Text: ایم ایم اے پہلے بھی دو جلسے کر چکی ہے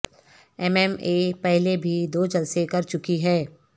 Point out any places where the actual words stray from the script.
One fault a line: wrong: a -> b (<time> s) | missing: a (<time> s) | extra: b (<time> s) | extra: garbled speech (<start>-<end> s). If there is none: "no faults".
no faults